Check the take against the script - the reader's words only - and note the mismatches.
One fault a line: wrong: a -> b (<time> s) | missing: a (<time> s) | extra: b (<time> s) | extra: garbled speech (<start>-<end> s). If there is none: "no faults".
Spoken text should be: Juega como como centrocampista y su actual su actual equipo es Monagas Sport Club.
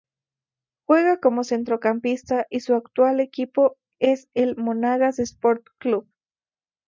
missing: como (1.4 s)
missing: su actual (3.2 s)
extra: el (4.3 s)